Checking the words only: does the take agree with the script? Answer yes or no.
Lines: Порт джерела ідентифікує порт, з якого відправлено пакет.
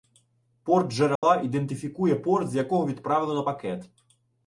yes